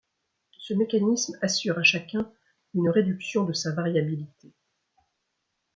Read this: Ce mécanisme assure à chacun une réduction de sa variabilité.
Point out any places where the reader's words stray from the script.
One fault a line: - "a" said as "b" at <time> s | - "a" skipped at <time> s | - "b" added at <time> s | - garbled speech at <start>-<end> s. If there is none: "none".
none